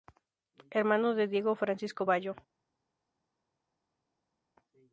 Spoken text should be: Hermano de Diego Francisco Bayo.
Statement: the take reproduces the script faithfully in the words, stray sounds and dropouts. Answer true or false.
true